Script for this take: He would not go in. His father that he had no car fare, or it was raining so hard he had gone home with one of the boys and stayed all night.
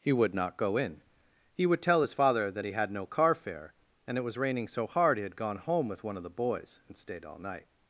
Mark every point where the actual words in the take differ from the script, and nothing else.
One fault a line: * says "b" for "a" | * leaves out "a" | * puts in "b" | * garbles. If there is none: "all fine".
* puts in "He would tell"
* says "and" for "or"